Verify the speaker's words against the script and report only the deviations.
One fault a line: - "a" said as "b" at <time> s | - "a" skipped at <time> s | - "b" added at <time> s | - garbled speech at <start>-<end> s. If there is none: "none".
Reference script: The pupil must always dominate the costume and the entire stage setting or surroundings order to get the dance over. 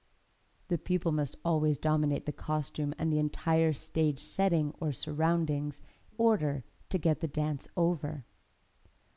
none